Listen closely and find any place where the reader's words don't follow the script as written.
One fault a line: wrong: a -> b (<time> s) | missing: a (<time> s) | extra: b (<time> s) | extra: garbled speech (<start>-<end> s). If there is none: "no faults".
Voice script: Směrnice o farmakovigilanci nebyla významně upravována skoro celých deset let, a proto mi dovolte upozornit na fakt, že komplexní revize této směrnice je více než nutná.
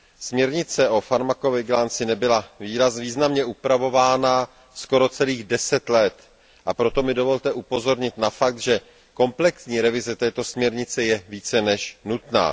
no faults